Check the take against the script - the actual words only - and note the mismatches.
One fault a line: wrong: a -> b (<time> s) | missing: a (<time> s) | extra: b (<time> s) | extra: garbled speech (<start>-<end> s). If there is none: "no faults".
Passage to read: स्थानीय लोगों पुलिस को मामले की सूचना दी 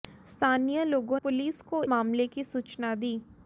no faults